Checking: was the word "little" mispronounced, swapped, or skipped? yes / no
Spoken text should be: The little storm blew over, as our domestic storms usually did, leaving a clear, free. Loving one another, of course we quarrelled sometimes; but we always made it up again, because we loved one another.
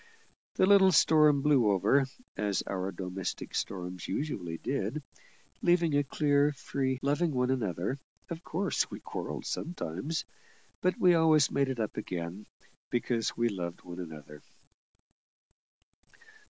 no